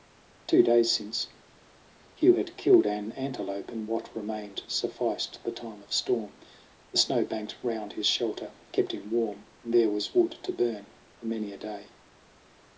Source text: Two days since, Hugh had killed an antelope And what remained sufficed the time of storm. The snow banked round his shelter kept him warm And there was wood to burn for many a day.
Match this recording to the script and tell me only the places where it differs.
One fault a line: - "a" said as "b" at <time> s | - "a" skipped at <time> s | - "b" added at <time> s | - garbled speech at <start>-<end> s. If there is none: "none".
none